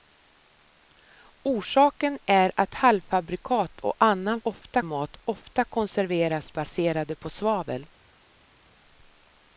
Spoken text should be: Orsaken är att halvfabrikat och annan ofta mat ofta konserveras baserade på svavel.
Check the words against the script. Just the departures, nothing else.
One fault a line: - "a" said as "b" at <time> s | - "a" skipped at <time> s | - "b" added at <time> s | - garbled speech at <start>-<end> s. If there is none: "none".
none